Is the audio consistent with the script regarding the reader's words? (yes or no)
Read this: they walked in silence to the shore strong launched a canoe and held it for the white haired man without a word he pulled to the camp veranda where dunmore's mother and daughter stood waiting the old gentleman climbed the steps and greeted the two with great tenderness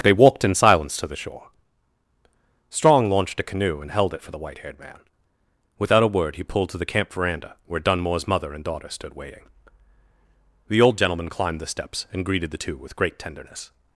yes